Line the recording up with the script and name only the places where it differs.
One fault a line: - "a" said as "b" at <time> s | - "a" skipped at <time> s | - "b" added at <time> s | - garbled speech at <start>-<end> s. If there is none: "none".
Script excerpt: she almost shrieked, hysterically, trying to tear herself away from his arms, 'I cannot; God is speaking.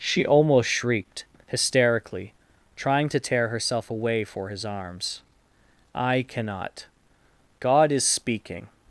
- "from" said as "for" at 4.2 s